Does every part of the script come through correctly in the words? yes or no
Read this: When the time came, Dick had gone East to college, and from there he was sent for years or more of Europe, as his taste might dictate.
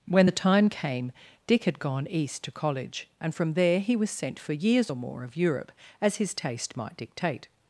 yes